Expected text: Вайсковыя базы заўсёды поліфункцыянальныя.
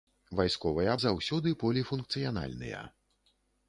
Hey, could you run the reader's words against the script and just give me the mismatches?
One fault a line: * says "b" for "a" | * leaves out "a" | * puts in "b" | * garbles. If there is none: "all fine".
* leaves out "базы"